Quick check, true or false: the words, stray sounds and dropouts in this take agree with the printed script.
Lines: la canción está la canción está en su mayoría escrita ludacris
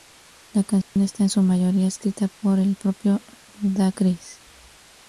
false